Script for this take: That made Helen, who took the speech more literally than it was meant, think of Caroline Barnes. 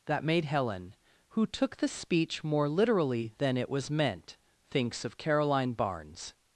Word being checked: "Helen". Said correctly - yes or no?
yes